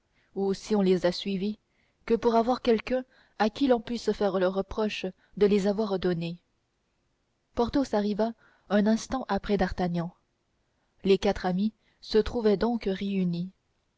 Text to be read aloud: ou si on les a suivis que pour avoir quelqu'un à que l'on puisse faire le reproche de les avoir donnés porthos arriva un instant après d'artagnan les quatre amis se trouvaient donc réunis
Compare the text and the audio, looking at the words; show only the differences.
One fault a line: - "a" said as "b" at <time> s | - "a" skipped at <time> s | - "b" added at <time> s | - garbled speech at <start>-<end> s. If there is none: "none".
- "que" said as "qui" at 3.5 s